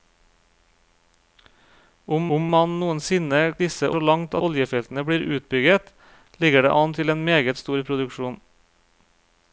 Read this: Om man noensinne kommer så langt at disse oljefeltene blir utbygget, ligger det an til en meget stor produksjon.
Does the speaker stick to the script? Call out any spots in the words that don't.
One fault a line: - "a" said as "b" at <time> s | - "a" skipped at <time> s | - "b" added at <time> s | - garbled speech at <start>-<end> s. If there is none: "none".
- "om" added at 2.4 s
- "kommer" said as "disse" at 3.6 s
- "at disse" skipped at 4.4 s